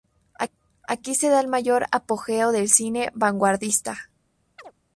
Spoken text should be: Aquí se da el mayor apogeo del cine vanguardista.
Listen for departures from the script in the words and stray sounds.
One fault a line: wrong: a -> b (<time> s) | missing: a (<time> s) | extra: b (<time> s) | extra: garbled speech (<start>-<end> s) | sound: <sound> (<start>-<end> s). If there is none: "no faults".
sound: chirp (4.6-4.7 s)